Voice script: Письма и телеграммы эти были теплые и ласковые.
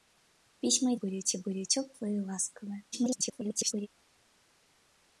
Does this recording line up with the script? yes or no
no